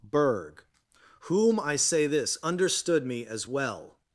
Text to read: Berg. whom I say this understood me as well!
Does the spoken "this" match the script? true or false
true